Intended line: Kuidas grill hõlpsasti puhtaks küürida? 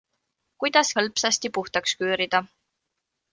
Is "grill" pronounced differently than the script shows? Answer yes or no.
yes